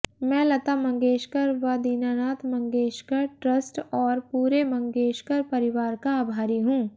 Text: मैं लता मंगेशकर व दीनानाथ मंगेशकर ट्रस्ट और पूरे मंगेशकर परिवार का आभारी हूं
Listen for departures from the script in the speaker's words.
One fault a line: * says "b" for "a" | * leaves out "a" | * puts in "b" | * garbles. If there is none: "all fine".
all fine